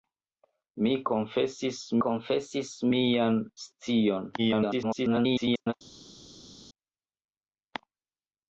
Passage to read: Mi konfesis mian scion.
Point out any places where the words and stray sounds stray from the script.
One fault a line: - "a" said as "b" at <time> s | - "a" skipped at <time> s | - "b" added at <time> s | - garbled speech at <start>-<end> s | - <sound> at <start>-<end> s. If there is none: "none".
- "konfesis" added at 2.0 s
- garbled speech at 4.4-5.7 s